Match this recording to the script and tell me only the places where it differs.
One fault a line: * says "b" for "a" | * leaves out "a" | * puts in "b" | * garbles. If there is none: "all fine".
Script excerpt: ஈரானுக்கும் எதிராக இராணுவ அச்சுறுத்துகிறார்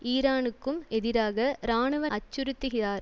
all fine